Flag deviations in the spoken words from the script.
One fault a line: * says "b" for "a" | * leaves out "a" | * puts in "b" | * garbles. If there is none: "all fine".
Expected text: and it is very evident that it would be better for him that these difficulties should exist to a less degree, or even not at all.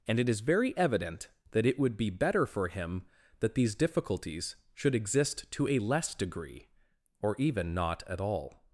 all fine